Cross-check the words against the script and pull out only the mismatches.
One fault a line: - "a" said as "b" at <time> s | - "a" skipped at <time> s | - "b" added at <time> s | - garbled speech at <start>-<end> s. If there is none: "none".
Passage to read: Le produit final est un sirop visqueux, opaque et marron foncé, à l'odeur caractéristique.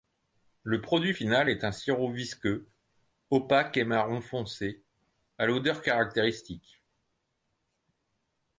none